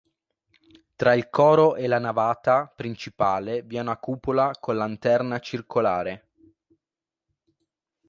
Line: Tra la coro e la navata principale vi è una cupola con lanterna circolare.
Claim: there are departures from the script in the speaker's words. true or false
true